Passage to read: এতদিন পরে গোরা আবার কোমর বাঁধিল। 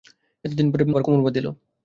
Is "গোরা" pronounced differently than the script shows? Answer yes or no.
yes